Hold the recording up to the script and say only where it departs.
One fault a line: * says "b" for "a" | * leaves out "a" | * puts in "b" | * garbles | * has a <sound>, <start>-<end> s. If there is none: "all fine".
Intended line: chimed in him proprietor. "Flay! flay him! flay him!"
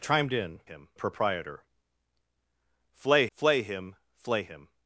all fine